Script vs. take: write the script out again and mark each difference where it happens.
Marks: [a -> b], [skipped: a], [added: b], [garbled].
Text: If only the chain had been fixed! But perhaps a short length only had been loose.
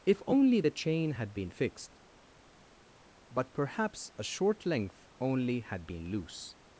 If only the chain had been fixed! But perhaps a short length only had been loose.